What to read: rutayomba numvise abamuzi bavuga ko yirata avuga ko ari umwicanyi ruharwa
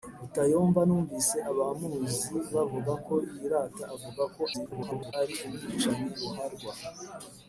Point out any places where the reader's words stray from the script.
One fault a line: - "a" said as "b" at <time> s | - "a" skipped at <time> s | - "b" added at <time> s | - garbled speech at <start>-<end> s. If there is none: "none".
- garbled speech at 4.5-5.1 s